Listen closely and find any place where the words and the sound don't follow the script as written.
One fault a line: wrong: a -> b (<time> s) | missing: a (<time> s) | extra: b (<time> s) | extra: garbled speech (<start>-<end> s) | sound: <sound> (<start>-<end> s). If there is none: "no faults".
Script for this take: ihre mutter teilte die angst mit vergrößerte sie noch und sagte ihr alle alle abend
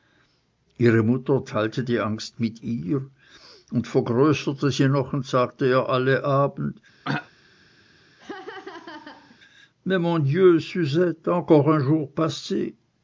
extra: ihr und (2.6 s)
missing: alle (6.2 s)
sound: throat clearing (7.0-7.3 s)
sound: laugh (8.2-9.4 s)